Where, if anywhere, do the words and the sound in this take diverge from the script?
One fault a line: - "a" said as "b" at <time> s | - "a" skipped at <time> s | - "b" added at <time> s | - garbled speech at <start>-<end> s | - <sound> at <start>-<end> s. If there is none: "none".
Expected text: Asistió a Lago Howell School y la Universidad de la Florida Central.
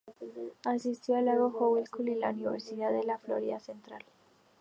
none